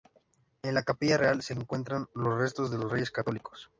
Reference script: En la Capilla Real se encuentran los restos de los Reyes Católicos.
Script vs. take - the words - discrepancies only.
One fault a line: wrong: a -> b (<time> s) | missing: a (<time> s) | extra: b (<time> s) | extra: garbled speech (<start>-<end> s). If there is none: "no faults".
no faults